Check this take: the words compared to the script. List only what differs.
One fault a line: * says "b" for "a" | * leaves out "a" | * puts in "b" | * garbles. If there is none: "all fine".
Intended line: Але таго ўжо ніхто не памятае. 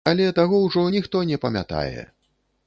all fine